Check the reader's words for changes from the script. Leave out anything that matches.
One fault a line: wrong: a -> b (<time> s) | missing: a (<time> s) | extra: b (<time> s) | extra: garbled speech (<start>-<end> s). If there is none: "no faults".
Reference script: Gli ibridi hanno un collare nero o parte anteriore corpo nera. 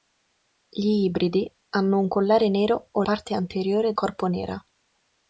no faults